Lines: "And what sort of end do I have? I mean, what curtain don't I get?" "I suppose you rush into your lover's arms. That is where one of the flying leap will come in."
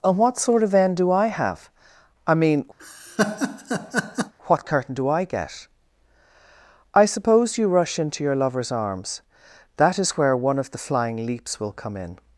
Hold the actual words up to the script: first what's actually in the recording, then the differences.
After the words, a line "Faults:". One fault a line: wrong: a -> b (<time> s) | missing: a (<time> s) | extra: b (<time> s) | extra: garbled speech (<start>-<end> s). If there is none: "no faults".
"And what sort of end do I have? I mean, what curtain do I get?" "I suppose you rush into your lover's arms. That is where one of the flying leaps will come in."
Faults:
wrong: don't -> do (4.9 s)
wrong: leap -> leaps (11.3 s)